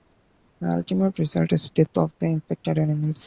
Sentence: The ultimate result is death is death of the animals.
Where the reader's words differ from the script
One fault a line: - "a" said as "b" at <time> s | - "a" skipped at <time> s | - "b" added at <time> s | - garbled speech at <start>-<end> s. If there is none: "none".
- "is death" skipped at 1.9 s
- "infected" added at 2.2 s